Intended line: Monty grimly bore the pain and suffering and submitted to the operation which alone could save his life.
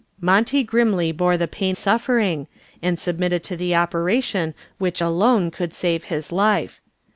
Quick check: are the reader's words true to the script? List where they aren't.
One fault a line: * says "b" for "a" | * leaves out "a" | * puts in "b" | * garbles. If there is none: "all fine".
* leaves out "and"